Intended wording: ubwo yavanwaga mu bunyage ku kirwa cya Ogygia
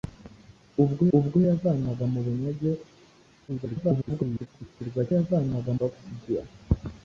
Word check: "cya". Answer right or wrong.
wrong